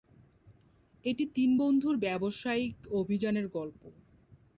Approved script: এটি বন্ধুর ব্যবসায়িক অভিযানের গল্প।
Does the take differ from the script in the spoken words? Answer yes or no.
yes